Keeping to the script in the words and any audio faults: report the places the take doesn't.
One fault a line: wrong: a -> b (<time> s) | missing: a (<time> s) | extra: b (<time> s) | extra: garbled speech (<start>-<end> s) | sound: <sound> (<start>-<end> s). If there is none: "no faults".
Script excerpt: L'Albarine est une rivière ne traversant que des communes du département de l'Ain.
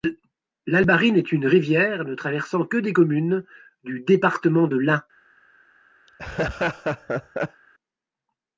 sound: laugh (6.1-7.6 s)